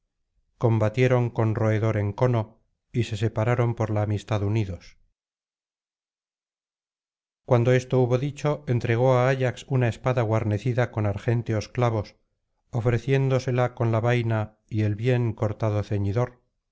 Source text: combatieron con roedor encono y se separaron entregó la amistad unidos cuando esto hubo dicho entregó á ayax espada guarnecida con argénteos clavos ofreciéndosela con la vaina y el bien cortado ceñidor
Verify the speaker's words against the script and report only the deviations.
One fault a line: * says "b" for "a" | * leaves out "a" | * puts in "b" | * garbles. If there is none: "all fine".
* says "por" for "entregó"
* puts in "una"